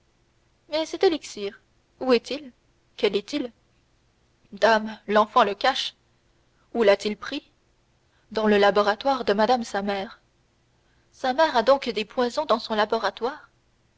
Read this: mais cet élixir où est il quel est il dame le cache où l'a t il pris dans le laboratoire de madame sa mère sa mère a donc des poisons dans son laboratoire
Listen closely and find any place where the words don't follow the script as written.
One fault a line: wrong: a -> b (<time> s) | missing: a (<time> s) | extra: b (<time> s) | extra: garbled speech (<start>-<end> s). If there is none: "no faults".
extra: l'enfant (5.1 s)